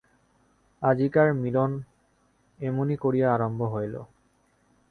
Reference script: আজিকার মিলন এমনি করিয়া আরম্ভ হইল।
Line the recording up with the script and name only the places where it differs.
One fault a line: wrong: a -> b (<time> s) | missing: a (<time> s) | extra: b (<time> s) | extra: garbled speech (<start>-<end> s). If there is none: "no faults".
no faults